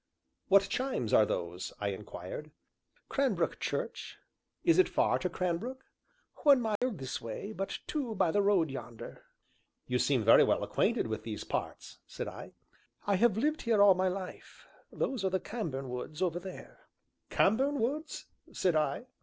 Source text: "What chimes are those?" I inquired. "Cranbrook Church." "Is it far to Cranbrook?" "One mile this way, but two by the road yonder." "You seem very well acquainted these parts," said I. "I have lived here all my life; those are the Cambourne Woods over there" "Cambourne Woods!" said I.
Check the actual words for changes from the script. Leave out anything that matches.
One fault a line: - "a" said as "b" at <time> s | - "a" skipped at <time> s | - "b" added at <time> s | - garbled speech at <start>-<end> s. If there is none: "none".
- "with" added at 11.1 s